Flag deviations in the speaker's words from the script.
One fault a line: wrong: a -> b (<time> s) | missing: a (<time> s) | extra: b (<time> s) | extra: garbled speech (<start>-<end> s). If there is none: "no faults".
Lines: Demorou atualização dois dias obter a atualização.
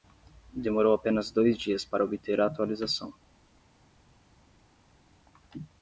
wrong: atualização -> apenas (0.9 s)
extra: para (1.9 s)